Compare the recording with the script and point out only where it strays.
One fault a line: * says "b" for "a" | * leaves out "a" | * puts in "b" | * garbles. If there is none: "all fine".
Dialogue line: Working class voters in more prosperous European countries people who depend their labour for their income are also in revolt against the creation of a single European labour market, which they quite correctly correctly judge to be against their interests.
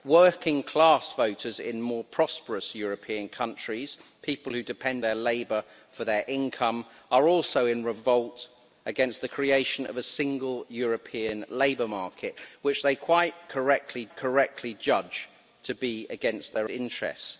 all fine